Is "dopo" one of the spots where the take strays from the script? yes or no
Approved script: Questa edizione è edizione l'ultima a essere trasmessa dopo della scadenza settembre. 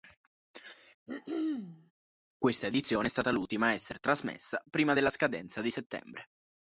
yes